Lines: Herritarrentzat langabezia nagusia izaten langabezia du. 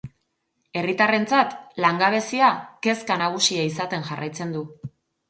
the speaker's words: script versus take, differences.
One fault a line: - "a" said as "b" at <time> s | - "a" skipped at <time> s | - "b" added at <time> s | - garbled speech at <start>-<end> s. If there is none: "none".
- "kezka" added at 2.9 s
- "langabezia" said as "jarraitzen" at 4.1 s